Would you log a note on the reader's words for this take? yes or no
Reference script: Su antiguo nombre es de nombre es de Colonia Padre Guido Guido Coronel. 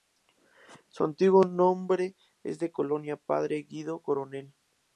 yes